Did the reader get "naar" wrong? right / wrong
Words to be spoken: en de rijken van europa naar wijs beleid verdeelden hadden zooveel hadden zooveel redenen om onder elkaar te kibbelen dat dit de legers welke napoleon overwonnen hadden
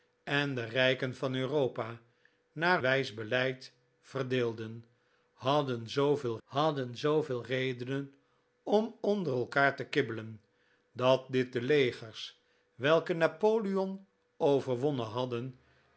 right